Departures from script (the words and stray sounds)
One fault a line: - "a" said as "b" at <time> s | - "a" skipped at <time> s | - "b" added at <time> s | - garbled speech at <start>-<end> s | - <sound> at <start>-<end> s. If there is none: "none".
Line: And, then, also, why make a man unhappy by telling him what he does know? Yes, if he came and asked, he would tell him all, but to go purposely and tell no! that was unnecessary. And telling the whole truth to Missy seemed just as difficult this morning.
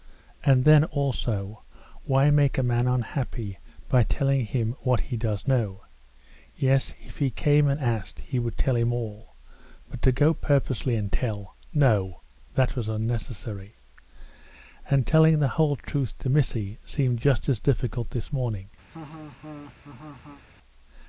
- laugh at 18.9-20.4 s